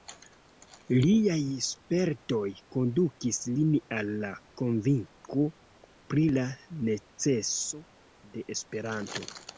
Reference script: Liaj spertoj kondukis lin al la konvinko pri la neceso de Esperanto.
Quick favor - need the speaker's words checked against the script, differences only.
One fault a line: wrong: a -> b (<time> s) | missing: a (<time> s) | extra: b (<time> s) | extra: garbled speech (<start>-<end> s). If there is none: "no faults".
no faults